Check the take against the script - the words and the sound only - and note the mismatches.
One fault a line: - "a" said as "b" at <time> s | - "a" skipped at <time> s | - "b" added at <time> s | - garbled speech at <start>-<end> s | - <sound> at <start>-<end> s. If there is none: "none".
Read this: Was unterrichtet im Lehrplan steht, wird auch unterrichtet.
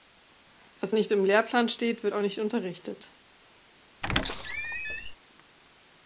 - "unterrichtet" said as "nicht" at 0.9 s
- "nicht" added at 2.2 s
- squeak at 4.0-5.2 s